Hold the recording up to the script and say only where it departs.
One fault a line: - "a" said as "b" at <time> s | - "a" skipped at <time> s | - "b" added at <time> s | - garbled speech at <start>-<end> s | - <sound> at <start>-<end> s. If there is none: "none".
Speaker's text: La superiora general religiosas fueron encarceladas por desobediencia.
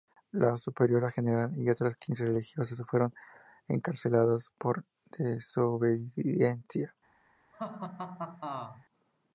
- "y otras quince" added at 1.6 s
- laugh at 7.5-8.9 s